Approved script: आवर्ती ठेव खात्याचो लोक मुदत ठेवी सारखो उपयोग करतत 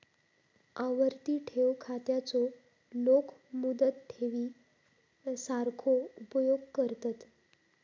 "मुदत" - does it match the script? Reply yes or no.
yes